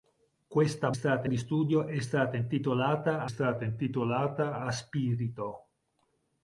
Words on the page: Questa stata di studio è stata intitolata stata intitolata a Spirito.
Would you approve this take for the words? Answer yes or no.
yes